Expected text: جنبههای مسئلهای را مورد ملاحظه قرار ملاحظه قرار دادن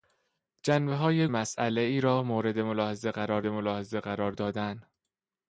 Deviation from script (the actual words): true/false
false